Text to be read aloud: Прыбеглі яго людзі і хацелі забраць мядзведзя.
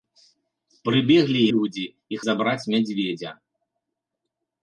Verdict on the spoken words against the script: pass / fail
fail